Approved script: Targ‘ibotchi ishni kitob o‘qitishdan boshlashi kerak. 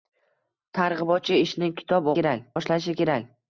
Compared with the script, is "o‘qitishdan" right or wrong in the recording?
wrong